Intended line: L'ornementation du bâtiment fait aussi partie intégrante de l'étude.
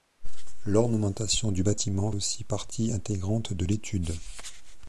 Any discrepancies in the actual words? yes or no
yes